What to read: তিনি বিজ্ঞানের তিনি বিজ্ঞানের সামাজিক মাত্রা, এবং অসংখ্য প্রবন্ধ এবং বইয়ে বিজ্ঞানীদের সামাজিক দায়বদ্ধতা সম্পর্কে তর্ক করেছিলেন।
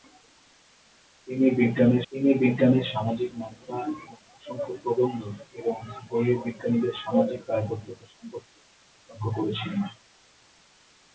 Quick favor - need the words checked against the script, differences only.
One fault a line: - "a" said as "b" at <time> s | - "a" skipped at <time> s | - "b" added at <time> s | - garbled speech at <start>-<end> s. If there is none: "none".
none